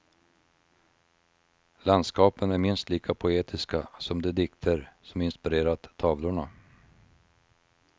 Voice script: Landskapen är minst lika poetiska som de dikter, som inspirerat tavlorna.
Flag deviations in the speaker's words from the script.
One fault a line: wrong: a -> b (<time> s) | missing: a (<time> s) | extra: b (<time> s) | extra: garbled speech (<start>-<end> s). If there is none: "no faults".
no faults